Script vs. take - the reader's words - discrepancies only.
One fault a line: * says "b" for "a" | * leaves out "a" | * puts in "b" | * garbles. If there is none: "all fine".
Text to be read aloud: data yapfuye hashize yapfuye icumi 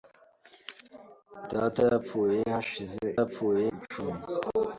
all fine